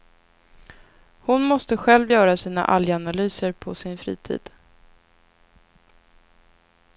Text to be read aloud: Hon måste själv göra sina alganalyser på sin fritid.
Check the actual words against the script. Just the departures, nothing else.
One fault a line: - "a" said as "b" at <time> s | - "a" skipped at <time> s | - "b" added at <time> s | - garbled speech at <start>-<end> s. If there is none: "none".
none